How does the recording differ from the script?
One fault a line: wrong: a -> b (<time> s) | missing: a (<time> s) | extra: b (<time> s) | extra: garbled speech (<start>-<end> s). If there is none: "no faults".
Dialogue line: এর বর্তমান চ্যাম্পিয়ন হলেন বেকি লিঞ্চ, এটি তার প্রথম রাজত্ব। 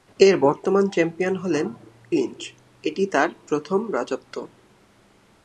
missing: বেকি (1.7 s)